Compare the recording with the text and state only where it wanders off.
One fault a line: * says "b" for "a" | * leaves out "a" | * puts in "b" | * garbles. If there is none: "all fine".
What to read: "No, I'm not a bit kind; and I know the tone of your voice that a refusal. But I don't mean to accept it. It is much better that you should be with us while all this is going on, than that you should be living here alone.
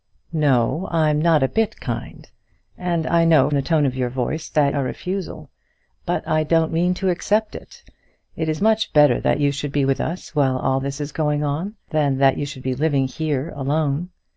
all fine